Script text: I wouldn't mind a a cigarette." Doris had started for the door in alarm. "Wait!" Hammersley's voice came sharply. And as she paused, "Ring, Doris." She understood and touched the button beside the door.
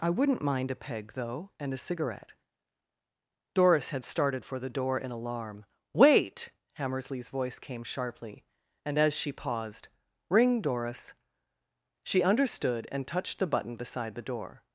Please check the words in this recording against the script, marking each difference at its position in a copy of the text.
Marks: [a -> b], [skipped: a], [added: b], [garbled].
I wouldn't mind a [added: peg though and] a cigarette." Doris had started for the door in alarm. "Wait!" Hammersley's voice came sharply. And as she paused, "Ring, Doris." She understood and touched the button beside the door.